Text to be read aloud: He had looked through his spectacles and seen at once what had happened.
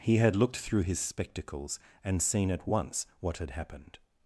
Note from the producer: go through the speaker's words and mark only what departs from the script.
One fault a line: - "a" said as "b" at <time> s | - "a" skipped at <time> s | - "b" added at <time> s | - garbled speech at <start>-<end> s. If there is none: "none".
none